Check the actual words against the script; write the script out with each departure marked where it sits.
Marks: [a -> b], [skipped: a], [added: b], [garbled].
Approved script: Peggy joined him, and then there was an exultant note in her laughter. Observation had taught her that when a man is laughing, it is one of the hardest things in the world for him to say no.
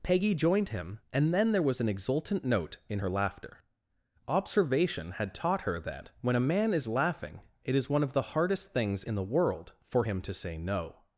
Peggy joined him, and then there was an exultant note in her laughter. Observation had taught her that when a man is laughing, it is one of the hardest things in the world for him to say no.